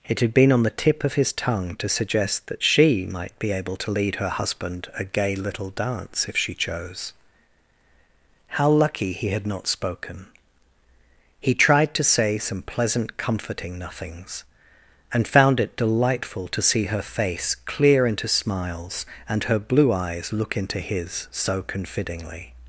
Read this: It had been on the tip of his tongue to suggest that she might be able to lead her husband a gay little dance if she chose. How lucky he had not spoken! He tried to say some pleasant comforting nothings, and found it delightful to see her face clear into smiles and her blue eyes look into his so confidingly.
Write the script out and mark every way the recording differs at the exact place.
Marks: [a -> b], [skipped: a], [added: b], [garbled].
It had been on the tip of his tongue to suggest that she might be able to lead her husband a gay little dance if she chose. How lucky he had not spoken! He tried to say some pleasant comforting nothings, and found it delightful to see her face clear into smiles and her blue eyes look into his so confidingly.